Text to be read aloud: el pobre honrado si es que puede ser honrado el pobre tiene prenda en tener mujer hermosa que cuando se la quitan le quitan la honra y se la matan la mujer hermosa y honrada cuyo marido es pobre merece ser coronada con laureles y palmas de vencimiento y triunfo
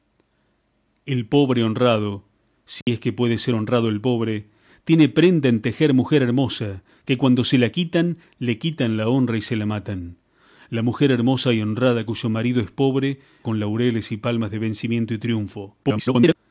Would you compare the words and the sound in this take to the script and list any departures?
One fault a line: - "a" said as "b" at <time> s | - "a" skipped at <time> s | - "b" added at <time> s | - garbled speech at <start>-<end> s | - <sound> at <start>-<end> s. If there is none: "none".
- dropout at 2.8-2.9 s
- "merece ser coronada" skipped at 13.2 s
- garbled speech at 15.8-16.4 s